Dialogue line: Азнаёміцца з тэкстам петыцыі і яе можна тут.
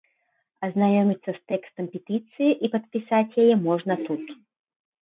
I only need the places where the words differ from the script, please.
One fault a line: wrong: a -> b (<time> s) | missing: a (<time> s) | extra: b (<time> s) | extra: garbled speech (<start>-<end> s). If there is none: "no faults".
extra: падпісаць (2.7 s)